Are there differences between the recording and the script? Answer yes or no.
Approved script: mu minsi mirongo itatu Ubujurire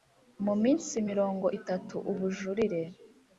no